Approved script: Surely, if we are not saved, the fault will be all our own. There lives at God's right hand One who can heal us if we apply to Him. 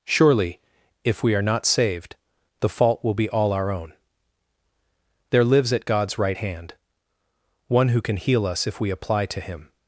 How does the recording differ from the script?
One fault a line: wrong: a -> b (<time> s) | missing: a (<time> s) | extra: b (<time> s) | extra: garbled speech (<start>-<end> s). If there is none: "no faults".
no faults